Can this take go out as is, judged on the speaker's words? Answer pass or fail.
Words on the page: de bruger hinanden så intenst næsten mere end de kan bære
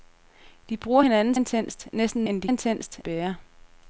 fail